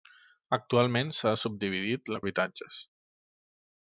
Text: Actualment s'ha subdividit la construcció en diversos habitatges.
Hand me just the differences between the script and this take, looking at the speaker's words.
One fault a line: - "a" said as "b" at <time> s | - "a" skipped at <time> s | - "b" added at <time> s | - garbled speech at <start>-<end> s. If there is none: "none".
- "construcció en diversos" skipped at 2.2 s